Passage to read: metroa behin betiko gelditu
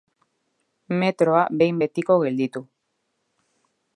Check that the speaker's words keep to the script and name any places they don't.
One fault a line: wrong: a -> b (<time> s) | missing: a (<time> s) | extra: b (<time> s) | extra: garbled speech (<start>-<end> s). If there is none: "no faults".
no faults